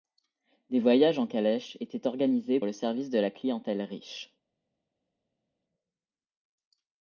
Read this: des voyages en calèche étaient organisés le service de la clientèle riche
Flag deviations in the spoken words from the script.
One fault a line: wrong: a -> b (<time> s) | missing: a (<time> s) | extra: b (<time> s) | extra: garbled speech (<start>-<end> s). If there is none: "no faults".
no faults